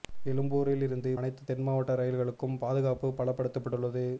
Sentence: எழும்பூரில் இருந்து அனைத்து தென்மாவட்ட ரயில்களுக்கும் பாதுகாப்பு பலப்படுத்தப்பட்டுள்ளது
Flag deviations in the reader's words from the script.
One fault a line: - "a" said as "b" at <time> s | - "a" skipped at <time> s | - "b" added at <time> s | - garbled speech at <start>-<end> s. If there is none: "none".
none